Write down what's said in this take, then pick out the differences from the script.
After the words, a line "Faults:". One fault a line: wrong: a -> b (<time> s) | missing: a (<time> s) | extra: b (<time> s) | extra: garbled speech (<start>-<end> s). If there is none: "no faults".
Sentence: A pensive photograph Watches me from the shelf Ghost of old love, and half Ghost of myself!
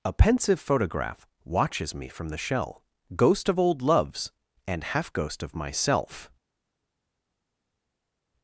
A pensive photograph Watches me from the shell Ghost of old loves, and half Ghost of myself!
Faults:
wrong: shelf -> shell (2.4 s)
wrong: love -> loves (3.8 s)